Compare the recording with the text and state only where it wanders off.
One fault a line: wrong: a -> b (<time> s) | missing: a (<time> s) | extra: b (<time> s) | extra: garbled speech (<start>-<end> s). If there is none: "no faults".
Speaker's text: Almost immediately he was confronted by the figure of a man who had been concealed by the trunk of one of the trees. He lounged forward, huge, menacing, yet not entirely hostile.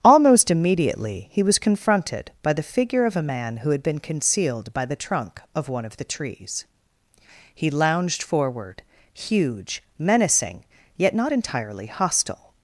no faults